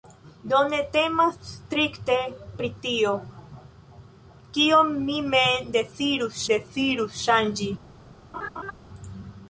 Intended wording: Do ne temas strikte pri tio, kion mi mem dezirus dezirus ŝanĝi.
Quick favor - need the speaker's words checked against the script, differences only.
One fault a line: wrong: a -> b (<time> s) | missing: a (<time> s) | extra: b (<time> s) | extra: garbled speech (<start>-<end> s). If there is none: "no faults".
no faults